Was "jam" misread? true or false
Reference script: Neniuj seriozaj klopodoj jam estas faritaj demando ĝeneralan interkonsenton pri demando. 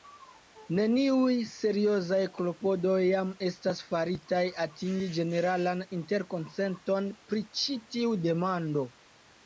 false